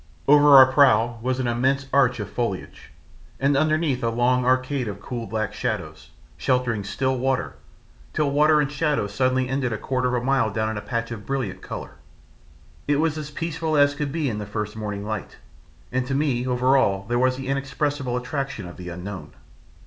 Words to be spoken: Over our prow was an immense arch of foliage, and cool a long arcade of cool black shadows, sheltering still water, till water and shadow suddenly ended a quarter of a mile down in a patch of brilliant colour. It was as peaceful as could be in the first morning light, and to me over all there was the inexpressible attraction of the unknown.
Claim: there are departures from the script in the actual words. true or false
true